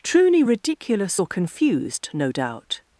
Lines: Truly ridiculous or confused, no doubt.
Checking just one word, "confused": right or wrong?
right